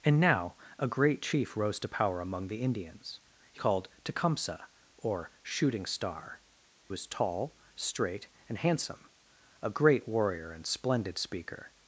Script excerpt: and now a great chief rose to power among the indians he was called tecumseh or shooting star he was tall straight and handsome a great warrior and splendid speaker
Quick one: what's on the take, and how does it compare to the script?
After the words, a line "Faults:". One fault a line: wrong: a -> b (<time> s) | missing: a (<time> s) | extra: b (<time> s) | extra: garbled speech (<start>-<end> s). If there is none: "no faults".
and now a great chief rose to power among the indians he called tecumseh or shooting star was tall straight and handsome a great warrior and splendid speaker
Faults:
missing: was (3.6 s)
missing: he (6.4 s)